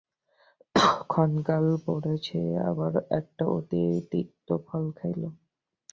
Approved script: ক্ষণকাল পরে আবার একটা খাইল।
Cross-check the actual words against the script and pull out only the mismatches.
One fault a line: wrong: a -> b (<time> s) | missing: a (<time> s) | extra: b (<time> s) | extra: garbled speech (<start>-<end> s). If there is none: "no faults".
extra: সে (2.2 s)
extra: অতি তিক্ত ফল (3.6 s)